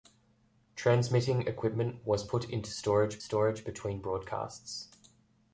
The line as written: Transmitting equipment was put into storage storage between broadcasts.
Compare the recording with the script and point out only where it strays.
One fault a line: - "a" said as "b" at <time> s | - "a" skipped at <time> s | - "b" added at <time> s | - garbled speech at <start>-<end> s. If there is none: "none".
none